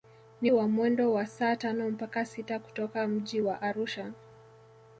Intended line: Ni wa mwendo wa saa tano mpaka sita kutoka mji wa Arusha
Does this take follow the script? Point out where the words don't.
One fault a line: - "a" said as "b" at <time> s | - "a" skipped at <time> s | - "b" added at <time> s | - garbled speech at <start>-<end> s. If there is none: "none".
none